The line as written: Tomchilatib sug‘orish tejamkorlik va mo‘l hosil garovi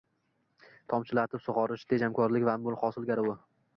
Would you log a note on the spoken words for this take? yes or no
no